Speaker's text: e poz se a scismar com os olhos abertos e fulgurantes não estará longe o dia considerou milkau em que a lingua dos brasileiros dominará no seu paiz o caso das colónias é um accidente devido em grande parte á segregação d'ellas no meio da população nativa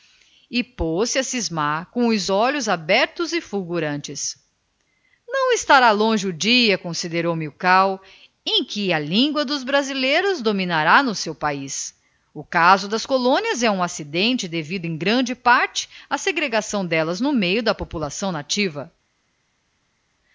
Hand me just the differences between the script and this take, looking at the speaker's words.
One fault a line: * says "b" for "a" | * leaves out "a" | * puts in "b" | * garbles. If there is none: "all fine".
all fine